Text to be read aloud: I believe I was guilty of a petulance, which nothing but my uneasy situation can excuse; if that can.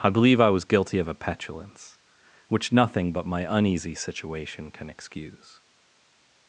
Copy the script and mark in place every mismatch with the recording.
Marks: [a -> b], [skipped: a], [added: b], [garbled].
I believe I was guilty of a petulance, which nothing but my uneasy situation can excuse; [skipped: if that can.]